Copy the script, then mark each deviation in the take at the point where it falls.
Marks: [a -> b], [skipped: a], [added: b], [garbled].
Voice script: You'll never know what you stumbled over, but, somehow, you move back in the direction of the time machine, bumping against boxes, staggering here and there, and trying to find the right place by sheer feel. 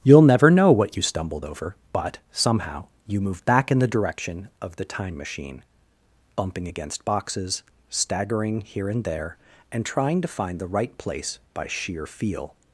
You'll never know what you stumbled over, but, somehow, you move back in the direction of the time machine, bumping against boxes, staggering here and there, and trying to find the right place by sheer feel.